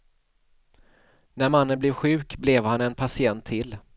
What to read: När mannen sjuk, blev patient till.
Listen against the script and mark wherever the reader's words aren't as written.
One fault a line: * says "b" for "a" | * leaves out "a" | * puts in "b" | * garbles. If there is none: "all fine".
* puts in "blev"
* puts in "han en"